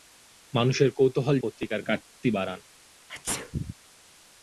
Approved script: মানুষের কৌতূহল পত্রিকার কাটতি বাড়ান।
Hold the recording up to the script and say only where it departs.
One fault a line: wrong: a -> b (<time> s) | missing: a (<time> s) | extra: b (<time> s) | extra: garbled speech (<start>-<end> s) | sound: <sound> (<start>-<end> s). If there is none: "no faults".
sound: sneeze (3.1-3.7 s)